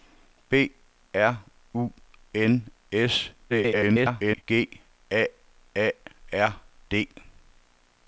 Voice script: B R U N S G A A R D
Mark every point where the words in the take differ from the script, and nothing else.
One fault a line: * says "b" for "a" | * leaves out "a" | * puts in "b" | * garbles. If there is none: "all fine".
* garbles